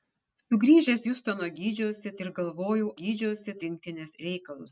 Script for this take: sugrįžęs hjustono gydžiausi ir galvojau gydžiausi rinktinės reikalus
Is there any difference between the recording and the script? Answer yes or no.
no